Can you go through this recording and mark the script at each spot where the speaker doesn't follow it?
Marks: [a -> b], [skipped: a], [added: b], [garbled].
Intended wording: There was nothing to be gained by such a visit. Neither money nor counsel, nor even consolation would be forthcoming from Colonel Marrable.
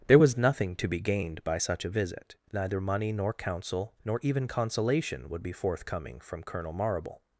There was nothing to be gained by such a visit. Neither money nor counsel, nor even consolation would be forthcoming from Colonel Marrable.